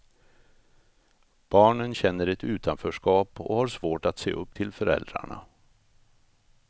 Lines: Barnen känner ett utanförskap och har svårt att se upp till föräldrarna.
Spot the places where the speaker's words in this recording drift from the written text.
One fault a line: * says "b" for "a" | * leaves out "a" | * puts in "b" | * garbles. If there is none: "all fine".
all fine